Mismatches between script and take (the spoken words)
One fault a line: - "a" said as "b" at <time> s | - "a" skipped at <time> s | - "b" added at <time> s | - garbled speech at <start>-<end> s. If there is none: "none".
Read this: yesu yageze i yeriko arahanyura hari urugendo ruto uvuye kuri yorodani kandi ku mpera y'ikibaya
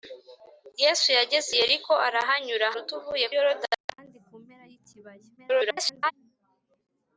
- "hari urugendo" skipped at 2.7 s
- "kuri" skipped at 3.3 s
- garbled speech at 5.4-6.1 s